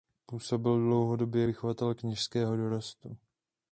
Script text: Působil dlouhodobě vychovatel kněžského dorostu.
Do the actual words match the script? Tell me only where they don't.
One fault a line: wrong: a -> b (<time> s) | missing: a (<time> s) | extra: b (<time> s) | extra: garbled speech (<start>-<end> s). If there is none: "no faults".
no faults